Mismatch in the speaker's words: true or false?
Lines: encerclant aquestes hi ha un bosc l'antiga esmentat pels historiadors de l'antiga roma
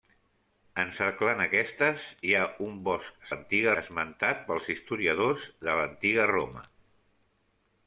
false